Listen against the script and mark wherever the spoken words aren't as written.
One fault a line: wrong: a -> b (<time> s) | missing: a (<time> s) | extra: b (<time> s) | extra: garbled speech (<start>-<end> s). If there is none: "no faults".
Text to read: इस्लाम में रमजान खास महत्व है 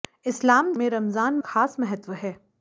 no faults